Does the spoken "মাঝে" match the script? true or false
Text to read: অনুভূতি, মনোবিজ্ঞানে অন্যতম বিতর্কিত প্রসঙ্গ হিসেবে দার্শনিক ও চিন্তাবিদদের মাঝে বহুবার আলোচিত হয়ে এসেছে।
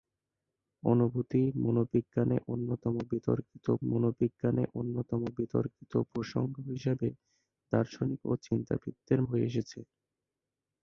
false